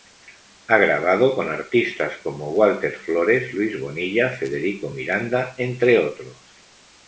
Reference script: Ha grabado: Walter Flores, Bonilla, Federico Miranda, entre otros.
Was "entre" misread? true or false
false